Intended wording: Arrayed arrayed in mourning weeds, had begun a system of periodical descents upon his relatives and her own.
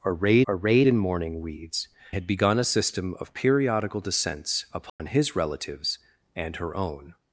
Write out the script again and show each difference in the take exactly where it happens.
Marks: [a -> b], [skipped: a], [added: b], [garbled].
Arrayed arrayed in mourning weeds, had begun a system of periodical descents upon his relatives and her own.